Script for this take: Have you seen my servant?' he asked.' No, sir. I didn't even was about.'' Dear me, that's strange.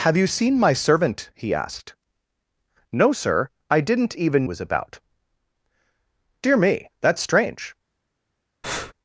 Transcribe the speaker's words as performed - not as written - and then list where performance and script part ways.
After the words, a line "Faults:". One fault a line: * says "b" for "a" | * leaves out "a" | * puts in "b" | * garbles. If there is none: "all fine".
Have you seen my servant?' he asked.' No, sir. I didn't even was about.'' Dear me, that's strange.
Faults:
all fine